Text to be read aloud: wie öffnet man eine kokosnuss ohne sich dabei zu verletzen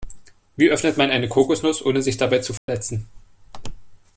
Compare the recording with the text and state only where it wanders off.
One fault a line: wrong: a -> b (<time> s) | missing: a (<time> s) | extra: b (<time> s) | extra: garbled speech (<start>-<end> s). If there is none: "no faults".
no faults